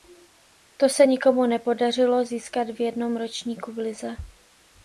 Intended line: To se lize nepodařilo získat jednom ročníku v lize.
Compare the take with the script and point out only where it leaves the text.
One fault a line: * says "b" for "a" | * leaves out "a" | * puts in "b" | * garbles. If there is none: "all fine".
* says "nikomu" for "lize"
* puts in "v"